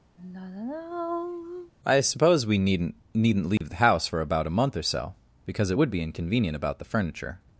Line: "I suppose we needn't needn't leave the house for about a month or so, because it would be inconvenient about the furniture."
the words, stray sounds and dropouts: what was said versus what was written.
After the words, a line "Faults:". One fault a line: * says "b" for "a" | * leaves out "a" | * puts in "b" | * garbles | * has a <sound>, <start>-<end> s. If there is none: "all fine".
"I suppose we needn't needn't leave the house for about a month or so, because it would be inconvenient about the furniture."
Faults:
* has a sigh, 0.2-1.7 s
* has a dropout, 3.6-3.6 s